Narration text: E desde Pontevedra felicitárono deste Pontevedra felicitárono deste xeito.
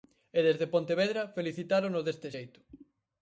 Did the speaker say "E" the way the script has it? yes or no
yes